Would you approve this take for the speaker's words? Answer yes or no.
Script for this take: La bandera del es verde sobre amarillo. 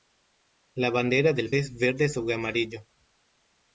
yes